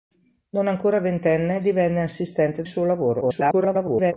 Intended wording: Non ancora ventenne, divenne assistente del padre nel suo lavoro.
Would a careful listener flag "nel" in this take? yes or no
yes